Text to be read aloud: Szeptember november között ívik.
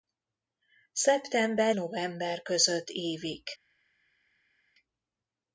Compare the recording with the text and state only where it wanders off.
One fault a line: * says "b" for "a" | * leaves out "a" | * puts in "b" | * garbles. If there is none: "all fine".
all fine